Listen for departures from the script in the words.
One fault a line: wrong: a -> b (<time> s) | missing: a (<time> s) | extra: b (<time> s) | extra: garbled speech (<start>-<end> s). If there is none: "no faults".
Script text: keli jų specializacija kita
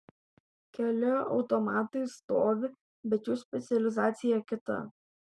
extra: automatai stovi bet (1.4 s)